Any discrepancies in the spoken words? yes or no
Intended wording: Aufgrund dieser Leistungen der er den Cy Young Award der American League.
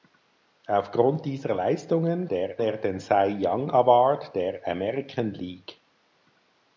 no